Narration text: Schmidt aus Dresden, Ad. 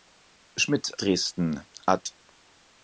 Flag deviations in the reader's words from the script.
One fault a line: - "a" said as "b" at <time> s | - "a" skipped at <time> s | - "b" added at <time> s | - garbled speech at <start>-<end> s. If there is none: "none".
- "aus" skipped at 1.0 s